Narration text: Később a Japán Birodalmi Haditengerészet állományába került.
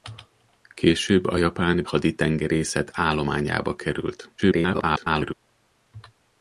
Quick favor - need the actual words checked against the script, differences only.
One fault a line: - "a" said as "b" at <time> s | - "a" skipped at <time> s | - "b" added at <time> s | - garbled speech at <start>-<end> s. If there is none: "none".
- "Birodalmi" skipped at 1.8 s
- garbled speech at 4.4-5.3 s